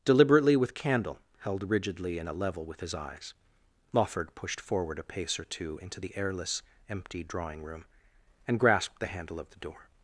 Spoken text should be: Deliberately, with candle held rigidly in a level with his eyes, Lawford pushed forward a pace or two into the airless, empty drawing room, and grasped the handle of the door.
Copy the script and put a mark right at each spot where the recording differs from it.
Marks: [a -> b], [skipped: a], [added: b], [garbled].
Deliberately, with candle held rigidly in a level with his eyes, Lawford pushed forward a pace or two into the airless, empty drawing room, and grasped the handle of the door.